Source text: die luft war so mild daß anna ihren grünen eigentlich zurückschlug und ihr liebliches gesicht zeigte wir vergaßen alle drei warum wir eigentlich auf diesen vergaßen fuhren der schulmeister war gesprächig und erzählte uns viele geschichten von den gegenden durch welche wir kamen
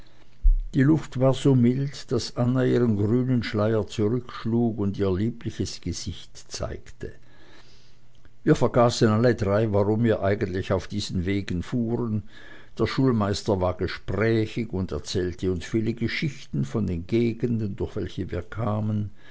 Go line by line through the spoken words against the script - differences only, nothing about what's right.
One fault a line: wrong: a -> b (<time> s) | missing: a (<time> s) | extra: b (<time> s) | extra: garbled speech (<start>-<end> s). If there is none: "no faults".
wrong: eigentlich -> schleier (3.4 s)
wrong: vergaßen -> wegen (11.2 s)